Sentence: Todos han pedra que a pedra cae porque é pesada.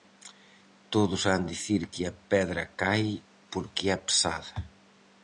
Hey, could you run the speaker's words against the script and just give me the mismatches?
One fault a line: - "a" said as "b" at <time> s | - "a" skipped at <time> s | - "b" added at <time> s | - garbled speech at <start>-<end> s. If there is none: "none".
- "pedra" said as "dicir" at 1.5 s